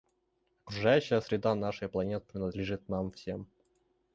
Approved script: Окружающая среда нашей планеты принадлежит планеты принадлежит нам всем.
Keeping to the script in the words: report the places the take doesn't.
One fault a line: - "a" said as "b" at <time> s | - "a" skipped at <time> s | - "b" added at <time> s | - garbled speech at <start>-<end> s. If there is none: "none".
- "планеты принадлежит" skipped at 2.9 s